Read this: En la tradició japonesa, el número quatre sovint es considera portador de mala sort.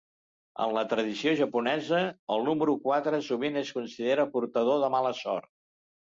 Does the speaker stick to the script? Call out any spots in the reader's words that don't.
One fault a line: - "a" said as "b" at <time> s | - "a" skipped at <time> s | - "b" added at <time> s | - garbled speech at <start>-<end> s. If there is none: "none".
none